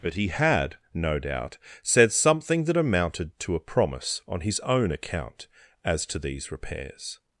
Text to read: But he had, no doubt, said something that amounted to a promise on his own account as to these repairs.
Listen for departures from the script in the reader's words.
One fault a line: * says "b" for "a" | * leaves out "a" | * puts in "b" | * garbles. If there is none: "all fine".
all fine